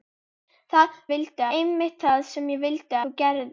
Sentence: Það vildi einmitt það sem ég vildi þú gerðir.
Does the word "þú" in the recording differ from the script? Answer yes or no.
no